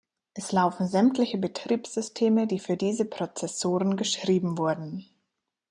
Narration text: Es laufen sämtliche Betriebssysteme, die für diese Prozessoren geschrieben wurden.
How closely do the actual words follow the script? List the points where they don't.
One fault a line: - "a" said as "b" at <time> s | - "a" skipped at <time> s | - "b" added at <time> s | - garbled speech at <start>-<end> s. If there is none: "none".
none